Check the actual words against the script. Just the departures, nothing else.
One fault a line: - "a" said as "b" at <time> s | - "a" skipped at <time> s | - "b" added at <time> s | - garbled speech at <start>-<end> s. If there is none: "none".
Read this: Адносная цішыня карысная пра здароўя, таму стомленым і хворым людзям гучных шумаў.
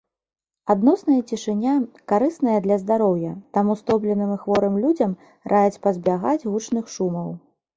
- "пра" said as "для" at 2.6 s
- "раяць пазбягаць" added at 5.5 s